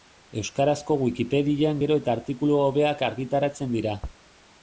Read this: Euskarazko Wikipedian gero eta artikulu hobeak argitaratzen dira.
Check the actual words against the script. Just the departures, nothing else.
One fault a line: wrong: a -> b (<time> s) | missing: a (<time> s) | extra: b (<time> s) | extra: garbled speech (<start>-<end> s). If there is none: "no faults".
no faults